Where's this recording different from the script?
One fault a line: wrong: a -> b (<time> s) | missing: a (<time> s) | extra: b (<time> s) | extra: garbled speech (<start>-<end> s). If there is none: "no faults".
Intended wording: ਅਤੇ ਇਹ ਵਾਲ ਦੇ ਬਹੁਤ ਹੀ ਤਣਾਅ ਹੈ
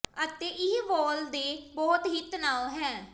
no faults